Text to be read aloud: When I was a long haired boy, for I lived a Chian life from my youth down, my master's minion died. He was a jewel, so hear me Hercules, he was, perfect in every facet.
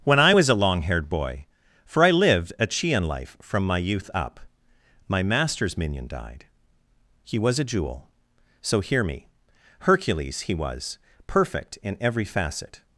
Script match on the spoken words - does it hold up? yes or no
no